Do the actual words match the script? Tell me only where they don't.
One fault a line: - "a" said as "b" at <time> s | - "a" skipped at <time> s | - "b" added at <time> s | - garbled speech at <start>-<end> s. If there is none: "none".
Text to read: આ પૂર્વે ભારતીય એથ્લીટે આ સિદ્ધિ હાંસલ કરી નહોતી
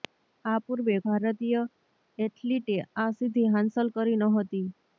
none